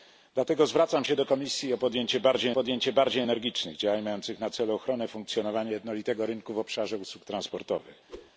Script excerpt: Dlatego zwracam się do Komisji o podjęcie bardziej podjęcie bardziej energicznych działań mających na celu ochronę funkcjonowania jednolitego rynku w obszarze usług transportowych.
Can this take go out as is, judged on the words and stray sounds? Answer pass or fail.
fail